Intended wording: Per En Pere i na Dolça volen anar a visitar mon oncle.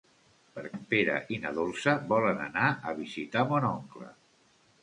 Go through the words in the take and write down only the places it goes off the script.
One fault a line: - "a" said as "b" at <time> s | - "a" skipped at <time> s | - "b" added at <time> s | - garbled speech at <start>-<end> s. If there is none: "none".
none